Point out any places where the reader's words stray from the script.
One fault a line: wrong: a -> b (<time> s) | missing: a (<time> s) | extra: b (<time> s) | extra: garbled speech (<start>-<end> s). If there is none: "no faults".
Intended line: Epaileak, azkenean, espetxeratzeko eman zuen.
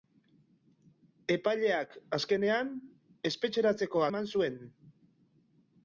no faults